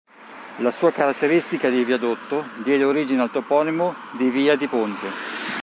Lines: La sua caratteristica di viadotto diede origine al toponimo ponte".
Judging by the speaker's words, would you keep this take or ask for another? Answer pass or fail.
fail